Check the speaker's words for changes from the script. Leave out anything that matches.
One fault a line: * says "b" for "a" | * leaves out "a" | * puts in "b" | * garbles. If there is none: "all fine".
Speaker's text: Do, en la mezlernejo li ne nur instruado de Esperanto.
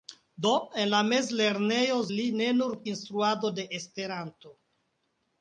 all fine